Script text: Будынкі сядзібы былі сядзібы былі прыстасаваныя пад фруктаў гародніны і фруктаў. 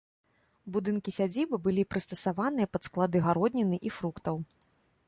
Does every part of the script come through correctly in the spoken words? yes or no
no